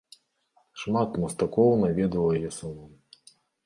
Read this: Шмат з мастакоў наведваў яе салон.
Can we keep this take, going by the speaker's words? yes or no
yes